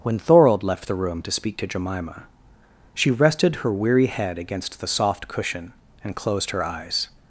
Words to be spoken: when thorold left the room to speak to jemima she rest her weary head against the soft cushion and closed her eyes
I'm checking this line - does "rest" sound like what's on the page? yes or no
no